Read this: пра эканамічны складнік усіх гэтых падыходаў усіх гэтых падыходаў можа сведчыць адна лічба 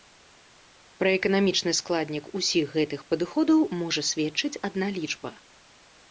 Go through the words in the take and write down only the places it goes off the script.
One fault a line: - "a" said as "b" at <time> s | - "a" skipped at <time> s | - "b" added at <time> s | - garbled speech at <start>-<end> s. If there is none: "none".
- "усіх гэтых падыходаў" skipped at 3.6 s